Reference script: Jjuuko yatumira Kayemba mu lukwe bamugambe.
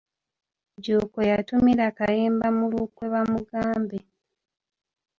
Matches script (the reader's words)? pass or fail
pass